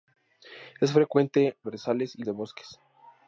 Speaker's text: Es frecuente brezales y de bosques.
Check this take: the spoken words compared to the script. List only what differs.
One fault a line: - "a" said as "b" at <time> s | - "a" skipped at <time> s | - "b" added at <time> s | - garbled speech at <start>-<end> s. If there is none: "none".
none